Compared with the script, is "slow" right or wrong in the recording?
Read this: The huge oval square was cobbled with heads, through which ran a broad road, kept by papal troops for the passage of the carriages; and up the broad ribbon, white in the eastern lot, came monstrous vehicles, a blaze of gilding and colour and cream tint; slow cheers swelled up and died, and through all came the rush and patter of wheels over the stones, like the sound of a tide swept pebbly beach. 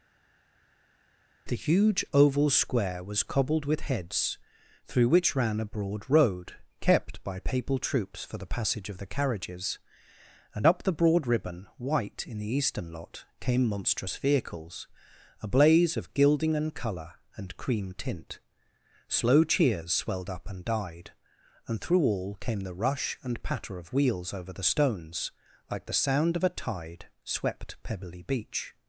right